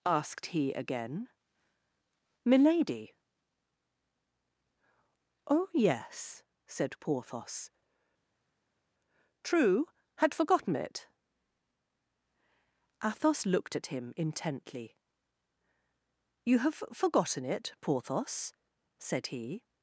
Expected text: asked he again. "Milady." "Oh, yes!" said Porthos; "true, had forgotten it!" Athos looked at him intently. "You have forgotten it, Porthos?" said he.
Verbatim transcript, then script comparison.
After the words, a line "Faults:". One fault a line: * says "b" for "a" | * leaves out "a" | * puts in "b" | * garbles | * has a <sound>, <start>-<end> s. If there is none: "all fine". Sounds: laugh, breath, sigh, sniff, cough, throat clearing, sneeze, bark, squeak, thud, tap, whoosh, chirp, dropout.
asked he again. "Milady." "Oh, yes!" said Porthos; "true, had forgotten it!" Athos looked at him intently. "You have forgotten it, Porthos?" said he.
Faults:
all fine